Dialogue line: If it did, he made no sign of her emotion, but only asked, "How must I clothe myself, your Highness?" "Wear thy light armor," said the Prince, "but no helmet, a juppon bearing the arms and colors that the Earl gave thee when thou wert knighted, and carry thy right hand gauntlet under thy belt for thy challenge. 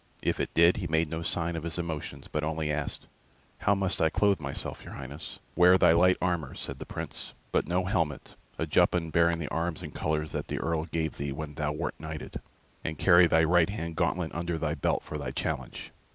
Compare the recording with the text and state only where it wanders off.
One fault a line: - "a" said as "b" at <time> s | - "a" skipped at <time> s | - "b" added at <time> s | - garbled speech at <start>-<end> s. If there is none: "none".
- "her" said as "his" at 1.6 s